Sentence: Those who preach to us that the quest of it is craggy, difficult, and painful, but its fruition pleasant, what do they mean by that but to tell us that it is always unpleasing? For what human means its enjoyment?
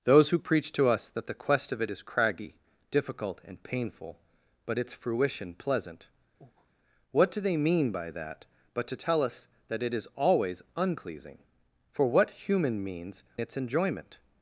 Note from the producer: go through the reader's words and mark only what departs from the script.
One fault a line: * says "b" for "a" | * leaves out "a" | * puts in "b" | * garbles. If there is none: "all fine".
all fine